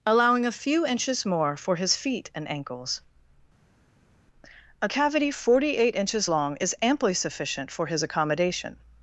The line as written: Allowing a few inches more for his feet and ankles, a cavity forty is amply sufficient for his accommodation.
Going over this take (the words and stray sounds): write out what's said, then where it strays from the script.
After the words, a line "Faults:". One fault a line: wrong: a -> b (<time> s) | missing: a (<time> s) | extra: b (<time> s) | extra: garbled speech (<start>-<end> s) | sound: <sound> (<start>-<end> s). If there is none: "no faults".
Allowing a few inches more for his feet and ankles, a cavity forty eight inches long is amply sufficient for his accommodation.
Faults:
extra: eight inches long (5.8 s)